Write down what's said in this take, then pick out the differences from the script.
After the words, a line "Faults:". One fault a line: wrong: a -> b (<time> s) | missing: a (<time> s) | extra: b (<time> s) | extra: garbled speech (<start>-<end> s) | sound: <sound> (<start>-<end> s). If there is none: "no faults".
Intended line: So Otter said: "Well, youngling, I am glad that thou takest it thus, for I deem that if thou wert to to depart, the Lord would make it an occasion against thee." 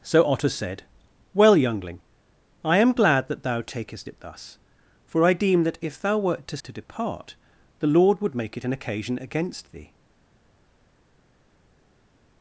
So Otter said: "Well, youngling, I am glad that thou takest it thus, for I deem that if thou wert to to depart, the Lord would make it an occasion against thee."
Faults:
no faults